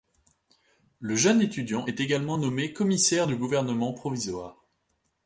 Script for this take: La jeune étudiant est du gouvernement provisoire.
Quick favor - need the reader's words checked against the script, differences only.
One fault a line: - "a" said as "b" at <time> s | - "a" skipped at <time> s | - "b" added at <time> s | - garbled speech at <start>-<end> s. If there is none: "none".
- "La" said as "Le" at 1.0 s
- "également nommé commissaire" added at 2.0 s